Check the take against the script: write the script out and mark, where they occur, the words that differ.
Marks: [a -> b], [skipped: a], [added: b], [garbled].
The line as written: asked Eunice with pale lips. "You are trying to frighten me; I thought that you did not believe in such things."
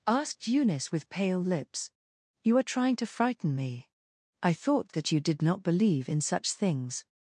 asked Eunice with pale lips. "You are trying to frighten me; I thought that you did not believe in such things."